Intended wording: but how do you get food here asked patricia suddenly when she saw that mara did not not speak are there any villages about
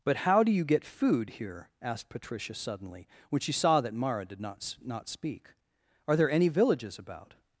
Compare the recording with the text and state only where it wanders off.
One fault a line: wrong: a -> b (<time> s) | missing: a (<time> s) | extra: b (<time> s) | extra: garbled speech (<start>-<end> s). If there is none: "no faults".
no faults